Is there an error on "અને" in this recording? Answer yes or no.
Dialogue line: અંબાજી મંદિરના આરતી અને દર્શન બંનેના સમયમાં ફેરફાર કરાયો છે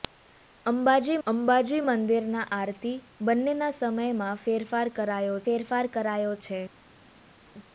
yes